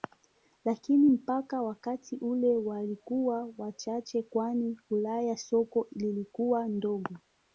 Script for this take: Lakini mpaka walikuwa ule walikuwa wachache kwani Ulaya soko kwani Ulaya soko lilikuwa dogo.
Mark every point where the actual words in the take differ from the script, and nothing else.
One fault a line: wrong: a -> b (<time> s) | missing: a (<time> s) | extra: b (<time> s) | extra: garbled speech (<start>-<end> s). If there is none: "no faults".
wrong: walikuwa -> wakati (1.6 s)
missing: kwani Ulaya soko (5.9 s)